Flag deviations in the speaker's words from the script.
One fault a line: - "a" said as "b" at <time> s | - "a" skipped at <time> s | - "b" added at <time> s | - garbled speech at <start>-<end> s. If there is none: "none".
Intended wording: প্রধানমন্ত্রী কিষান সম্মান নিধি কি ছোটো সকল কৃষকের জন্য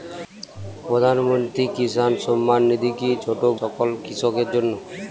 none